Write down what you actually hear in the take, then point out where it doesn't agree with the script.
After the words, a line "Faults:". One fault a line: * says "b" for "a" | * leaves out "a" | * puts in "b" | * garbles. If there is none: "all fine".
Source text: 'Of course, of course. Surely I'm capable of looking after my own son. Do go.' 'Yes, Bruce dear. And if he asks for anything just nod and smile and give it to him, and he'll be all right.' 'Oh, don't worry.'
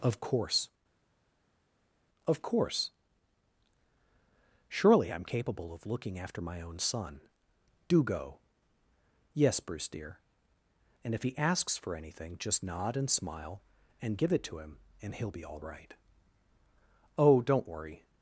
'Of course, of course. Surely I'm capable of looking after my own son. Do go.' 'Yes, Bruce dear. And if he asks for anything just nod and smile and give it to him, and he'll be all right.' 'Oh, don't worry.'
Faults:
all fine